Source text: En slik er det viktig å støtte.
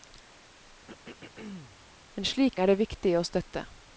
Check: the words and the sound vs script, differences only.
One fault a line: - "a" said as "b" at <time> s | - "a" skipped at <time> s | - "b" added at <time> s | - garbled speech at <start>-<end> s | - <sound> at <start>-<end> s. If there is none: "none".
- throat clearing at 0.9-1.8 s